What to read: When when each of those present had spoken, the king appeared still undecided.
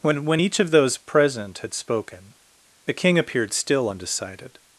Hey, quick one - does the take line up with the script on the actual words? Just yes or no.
yes